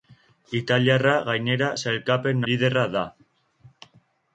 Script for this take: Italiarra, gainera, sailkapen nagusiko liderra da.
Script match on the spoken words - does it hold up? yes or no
no